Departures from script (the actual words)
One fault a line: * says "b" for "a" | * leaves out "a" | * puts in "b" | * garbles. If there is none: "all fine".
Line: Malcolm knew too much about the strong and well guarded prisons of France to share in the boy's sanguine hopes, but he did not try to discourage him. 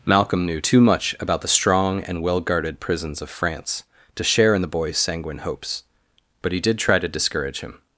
* leaves out "not"